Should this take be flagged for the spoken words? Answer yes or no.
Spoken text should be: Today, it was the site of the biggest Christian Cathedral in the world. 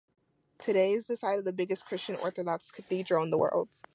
yes